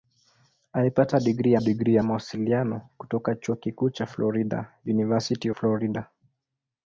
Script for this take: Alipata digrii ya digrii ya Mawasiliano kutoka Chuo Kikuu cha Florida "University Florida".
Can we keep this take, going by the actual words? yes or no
yes